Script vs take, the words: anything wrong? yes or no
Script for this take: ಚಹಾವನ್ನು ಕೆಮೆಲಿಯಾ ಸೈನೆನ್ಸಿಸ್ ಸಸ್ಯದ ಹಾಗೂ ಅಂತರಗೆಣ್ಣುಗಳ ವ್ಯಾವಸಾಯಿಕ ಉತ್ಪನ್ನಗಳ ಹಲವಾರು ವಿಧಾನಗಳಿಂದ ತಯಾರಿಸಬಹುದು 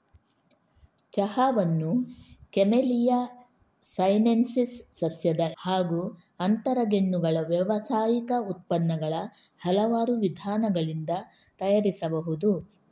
no